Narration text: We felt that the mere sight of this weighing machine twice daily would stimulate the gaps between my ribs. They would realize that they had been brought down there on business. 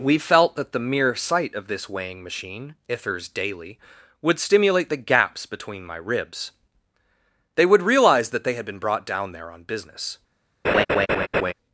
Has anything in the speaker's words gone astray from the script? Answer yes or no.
yes